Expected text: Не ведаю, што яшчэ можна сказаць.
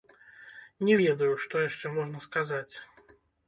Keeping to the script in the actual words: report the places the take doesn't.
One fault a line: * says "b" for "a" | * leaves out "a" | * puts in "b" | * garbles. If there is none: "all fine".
all fine